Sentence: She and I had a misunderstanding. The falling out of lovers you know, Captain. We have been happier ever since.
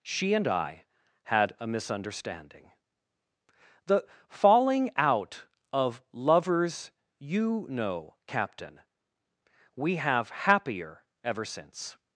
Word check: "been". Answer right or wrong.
wrong